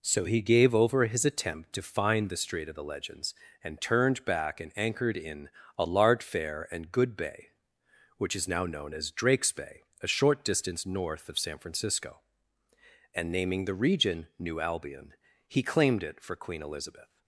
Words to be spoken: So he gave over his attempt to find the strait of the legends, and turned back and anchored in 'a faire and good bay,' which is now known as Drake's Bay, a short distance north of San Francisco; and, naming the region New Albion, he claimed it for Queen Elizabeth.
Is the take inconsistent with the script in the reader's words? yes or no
yes